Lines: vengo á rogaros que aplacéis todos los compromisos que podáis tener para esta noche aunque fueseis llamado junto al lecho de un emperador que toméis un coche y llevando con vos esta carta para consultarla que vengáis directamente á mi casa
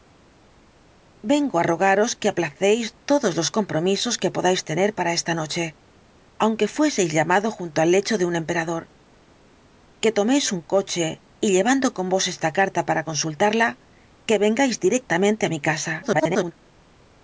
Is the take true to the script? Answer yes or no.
no